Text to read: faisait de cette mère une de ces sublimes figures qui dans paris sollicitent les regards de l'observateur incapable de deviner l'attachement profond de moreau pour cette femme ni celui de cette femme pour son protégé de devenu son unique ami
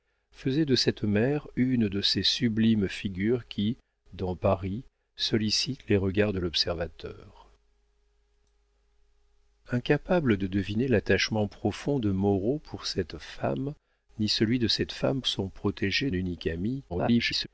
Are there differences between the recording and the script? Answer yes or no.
yes